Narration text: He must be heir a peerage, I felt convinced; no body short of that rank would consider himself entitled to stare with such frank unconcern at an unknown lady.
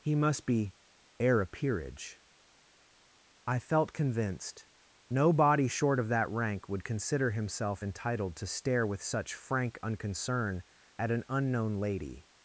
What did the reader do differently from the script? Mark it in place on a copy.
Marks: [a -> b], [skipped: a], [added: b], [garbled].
He must be heir a peerage, I felt convinced; no body short of that rank would consider himself entitled to stare with such frank unconcern at an unknown lady.